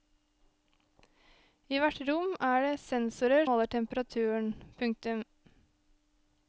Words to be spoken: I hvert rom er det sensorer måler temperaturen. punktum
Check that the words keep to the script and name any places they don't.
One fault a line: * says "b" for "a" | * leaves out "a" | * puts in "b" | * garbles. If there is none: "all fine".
all fine